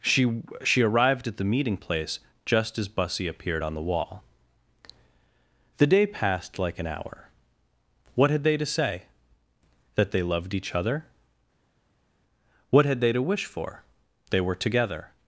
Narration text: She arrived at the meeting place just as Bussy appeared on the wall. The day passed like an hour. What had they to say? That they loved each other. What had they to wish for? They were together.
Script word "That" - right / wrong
right